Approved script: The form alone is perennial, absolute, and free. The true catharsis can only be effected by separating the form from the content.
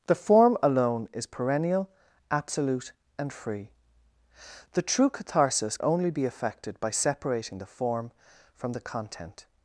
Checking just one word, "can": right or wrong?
wrong